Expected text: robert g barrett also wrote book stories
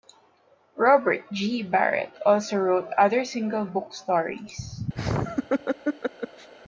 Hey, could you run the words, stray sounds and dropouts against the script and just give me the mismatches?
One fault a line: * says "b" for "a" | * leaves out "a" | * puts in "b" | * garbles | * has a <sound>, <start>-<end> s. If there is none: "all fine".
* puts in "other single"
* has a laugh, 4.9-6.5 s